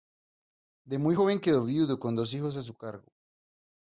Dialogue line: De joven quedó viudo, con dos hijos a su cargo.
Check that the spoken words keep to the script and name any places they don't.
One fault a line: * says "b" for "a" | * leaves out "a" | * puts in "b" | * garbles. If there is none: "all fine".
* puts in "muy"